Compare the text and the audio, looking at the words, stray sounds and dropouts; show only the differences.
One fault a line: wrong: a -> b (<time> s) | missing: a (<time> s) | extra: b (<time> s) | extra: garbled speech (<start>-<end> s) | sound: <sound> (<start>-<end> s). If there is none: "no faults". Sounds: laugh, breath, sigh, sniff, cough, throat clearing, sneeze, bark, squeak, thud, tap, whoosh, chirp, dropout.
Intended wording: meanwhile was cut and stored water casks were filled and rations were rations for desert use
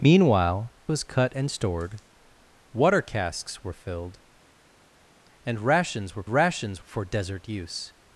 no faults